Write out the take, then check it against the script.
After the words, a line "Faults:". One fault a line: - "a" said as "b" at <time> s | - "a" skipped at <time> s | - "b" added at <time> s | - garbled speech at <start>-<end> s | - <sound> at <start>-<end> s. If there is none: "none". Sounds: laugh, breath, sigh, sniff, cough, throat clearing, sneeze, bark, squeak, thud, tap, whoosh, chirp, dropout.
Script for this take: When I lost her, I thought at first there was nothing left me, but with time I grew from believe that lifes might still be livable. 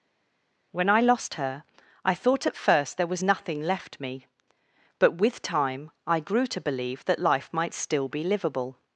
When I lost her, I thought at first there was nothing left me, but with time I grew to believe that life might still be livable.
Faults:
- "from" said as "to" at 6.5 s
- "lifes" said as "life" at 7.2 s